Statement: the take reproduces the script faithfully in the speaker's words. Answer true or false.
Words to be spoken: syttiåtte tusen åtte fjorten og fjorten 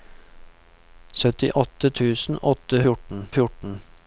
true